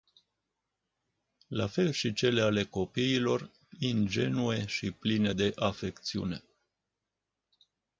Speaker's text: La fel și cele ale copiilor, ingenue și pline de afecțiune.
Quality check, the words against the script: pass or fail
pass